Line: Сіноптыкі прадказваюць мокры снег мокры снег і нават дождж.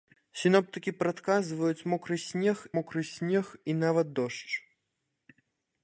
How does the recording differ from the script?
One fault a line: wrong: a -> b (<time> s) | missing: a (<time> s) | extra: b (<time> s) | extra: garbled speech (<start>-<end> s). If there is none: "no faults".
no faults